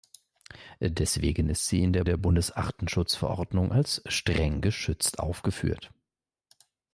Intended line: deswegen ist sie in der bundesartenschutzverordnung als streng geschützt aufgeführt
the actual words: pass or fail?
fail